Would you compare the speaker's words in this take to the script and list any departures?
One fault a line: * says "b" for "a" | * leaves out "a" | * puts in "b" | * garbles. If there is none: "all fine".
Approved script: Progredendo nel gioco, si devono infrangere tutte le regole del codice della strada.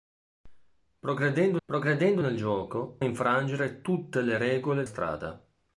* puts in "progredendo"
* leaves out "si devono"
* leaves out "del codice della"